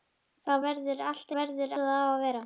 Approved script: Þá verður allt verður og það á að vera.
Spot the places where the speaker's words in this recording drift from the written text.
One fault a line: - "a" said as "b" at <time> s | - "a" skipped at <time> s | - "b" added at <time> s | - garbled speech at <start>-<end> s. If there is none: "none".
none